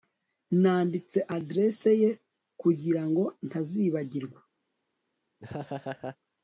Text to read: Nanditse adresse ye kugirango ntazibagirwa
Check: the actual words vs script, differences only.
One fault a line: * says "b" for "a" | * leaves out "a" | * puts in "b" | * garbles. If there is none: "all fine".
all fine